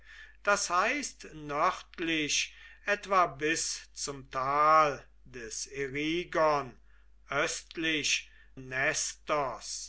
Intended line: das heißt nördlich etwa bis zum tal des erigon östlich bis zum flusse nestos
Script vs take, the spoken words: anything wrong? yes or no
yes